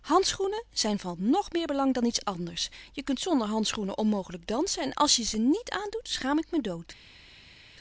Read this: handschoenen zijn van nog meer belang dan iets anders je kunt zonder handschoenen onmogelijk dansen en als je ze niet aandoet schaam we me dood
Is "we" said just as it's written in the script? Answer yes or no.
no